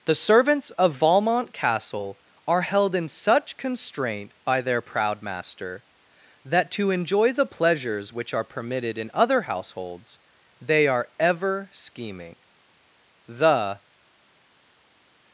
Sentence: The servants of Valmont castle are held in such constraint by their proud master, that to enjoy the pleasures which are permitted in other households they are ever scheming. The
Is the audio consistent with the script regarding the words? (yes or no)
yes